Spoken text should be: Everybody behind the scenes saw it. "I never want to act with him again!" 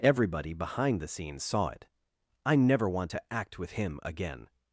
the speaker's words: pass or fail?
pass